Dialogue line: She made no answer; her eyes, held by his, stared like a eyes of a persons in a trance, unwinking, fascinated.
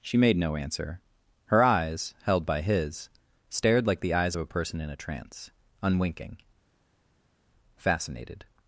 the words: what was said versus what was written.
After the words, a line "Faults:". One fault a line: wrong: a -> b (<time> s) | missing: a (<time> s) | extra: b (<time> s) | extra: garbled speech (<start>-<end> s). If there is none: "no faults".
She made no answer; her eyes, held by his, stared like the eyes of a person in a trance, unwinking, fascinated.
Faults:
wrong: a -> the (4.0 s)
wrong: persons -> person (4.4 s)